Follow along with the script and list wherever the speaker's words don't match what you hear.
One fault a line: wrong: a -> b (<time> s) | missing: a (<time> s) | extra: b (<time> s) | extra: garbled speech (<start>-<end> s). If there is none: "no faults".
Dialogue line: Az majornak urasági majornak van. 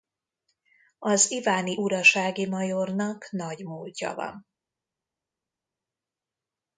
wrong: majornak -> iváni (1.3 s)
extra: nagy múltja (3.3 s)